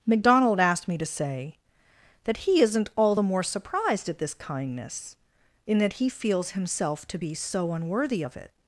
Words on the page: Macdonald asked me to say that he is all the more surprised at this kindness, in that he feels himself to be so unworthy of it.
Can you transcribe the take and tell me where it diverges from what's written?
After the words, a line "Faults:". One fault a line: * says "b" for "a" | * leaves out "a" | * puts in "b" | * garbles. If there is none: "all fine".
Macdonald asked me to say that he isn't all the more surprised at this kindness, in that he feels himself to be so unworthy of it.
Faults:
* says "isn't" for "is"